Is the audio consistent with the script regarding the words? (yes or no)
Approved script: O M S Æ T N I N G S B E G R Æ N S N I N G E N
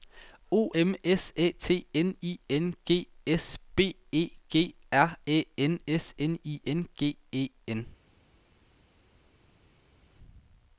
yes